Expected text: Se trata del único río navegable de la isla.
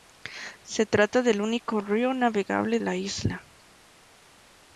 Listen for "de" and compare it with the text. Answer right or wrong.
wrong